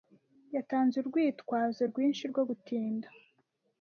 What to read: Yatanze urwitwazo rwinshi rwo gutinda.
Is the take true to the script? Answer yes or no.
yes